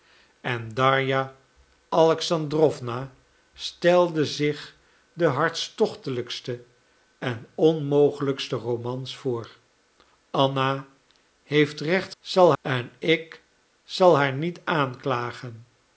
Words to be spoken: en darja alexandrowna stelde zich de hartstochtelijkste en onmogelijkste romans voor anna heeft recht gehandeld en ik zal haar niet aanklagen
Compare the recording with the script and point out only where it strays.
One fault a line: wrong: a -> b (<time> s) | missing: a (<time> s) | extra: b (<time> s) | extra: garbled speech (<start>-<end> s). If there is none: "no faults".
wrong: gehandeld -> zal (12.2 s)